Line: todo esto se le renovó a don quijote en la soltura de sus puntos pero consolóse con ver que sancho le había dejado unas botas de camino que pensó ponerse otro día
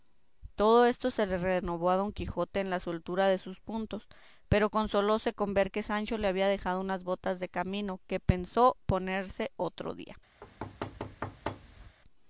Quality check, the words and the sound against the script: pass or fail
fail